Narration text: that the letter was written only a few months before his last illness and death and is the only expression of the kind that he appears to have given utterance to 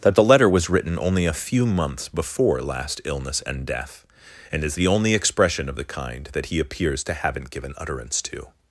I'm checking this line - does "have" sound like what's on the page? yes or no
no